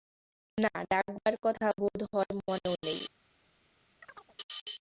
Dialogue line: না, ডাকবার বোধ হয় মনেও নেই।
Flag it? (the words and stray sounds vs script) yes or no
yes